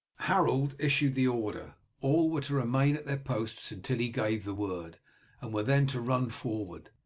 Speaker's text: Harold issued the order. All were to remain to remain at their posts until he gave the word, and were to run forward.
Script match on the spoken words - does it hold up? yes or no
no